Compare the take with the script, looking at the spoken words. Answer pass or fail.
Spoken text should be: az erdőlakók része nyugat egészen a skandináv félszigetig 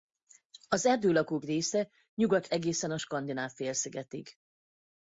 pass